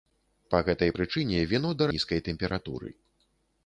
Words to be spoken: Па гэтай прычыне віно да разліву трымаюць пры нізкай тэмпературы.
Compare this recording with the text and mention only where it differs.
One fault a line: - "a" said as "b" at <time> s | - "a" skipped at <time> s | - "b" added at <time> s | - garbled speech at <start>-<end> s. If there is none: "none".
- "разліву трымаюць пры" skipped at 1.9 s